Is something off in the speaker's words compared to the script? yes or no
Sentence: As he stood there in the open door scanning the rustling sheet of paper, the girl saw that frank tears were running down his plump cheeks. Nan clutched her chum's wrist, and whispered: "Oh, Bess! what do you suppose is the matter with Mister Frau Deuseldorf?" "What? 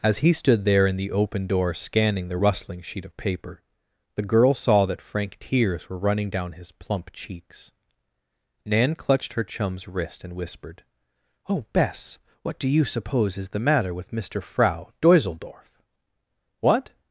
no